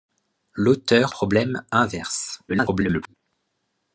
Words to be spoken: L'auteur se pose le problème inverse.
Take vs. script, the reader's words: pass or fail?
fail